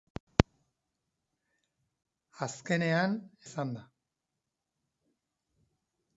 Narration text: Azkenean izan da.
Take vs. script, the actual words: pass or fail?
pass